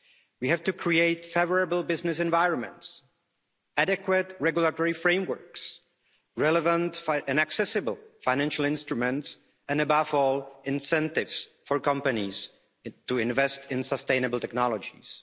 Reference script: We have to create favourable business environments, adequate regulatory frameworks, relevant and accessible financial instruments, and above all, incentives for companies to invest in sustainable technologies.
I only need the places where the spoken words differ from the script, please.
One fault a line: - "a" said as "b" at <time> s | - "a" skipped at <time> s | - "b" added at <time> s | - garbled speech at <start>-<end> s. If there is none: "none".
none